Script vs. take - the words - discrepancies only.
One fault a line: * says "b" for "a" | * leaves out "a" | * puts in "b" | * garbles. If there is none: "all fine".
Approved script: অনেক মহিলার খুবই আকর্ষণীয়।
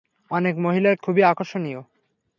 all fine